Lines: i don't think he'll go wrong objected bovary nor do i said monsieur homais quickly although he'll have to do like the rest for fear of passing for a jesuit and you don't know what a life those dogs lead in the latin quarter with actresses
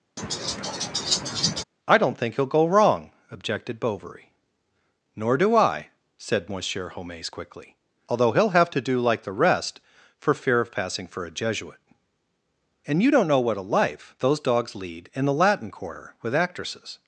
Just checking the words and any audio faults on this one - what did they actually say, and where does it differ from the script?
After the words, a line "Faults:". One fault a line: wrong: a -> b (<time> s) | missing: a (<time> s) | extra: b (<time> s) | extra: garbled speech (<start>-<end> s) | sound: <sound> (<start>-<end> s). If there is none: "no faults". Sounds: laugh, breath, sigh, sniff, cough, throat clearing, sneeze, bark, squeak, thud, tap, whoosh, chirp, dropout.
i don't think he'll go wrong objected bovary nor do i said monsieur homais quickly although he'll have to do like the rest for fear of passing for a jesuit and you don't know what a life those dogs lead in the latin quarter with actresses
Faults:
sound: laugh (0.2-1.6 s)